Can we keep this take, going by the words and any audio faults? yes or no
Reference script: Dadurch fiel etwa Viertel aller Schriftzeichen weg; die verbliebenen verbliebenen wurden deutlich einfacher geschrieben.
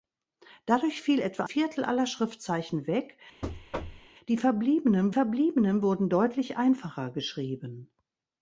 no